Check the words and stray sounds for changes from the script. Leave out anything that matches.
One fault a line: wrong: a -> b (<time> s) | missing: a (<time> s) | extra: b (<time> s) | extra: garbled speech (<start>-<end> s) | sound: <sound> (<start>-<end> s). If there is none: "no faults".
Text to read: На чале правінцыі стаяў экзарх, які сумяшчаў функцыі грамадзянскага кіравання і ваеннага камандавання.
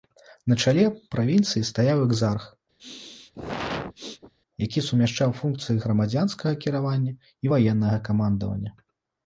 sound: sneeze (2.8-4.3 s)